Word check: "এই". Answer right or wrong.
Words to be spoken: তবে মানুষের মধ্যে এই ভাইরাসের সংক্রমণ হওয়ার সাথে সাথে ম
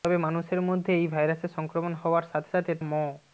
right